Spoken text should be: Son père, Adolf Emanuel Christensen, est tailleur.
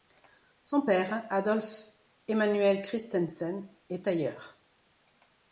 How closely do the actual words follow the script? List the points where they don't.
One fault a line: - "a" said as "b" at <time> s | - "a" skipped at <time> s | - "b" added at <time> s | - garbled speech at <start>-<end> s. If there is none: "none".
none